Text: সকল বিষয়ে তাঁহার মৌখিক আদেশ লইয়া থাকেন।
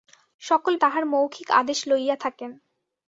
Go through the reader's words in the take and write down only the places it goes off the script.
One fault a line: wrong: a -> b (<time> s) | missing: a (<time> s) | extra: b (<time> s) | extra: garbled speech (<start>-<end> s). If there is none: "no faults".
missing: বিষয়ে (0.7 s)